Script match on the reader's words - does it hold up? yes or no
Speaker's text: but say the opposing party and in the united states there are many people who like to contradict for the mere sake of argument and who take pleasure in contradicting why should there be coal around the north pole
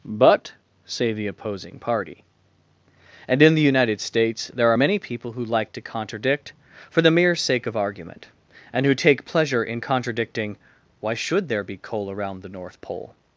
yes